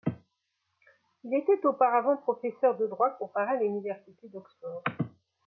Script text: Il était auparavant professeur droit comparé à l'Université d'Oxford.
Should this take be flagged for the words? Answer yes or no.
yes